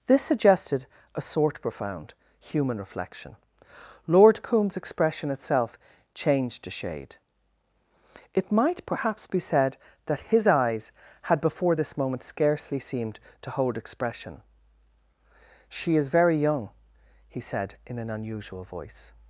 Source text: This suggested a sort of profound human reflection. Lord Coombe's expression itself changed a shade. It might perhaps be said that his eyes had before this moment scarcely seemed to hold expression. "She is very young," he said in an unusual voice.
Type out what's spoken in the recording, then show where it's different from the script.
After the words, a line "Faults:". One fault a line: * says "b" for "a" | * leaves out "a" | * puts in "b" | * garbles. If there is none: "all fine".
This suggested a sort profound human reflection. Lord Coombe's expression itself changed a shade. It might perhaps be said that his eyes had before this moment scarcely seemed to hold expression. "She is very young," he said in an unusual voice.
Faults:
* leaves out "of"